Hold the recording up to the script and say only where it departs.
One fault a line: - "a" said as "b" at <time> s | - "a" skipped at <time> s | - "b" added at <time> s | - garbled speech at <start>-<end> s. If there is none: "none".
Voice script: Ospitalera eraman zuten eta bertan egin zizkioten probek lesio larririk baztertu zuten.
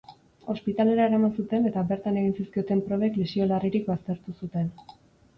none